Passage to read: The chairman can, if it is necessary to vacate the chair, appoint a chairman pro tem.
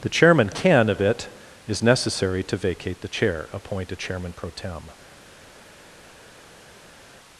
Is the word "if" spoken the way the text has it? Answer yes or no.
no